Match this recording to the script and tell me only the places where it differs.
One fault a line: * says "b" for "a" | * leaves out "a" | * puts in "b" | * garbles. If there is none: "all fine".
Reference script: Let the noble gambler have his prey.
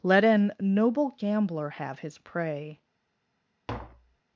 * says "an" for "the"